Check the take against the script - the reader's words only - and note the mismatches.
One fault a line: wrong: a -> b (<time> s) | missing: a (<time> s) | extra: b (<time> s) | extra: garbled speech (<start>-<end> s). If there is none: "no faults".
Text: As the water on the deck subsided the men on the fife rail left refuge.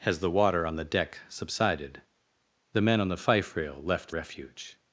no faults